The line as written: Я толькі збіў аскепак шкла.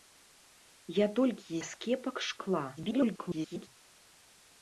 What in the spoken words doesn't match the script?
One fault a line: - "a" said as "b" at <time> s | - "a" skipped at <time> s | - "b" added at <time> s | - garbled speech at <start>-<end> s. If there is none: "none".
- "збіў" skipped at 1.6 s
- garbled speech at 2.8-3.7 s